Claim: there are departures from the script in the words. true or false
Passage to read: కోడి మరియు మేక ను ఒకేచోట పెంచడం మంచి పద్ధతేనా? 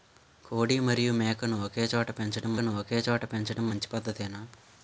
true